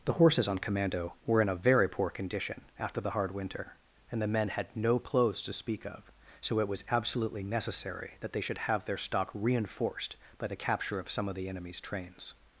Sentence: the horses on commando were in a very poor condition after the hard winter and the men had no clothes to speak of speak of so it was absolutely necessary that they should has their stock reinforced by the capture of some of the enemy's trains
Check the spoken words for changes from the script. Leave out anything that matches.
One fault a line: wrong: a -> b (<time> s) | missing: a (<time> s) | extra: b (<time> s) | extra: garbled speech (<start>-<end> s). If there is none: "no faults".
missing: speak of (6.1 s)
wrong: has -> have (8.7 s)